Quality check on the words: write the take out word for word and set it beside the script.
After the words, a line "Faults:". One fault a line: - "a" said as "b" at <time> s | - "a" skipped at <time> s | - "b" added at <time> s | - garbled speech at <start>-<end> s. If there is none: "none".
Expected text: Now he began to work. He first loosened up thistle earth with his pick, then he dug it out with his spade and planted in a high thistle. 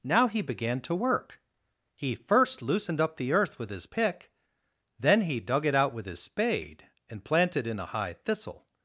Now he began to work. He first loosened up the earth with his pick, then he dug it out with his spade and planted in a high thistle.
Faults:
- "thistle" said as "the" at 3.2 s